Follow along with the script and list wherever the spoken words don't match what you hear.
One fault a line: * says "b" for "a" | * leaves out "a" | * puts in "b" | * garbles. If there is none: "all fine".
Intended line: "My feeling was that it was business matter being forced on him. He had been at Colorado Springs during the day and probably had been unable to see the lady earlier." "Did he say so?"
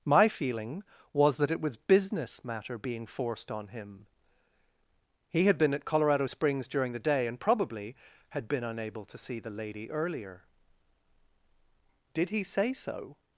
all fine